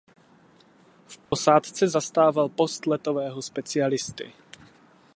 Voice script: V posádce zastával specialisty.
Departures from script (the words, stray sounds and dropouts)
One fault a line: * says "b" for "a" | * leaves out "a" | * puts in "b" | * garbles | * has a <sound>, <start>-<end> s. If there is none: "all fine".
* has a dropout, 1.3-1.3 s
* puts in "post letového"